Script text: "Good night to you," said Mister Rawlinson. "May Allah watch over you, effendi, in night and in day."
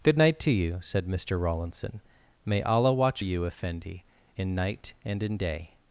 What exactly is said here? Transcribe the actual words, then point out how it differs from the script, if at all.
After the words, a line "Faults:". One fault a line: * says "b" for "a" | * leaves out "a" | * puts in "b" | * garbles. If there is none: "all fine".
"Good night to you," said Mister Rawlinson. "May Allah watch you, effendi, in night and in day."
Faults:
* leaves out "over"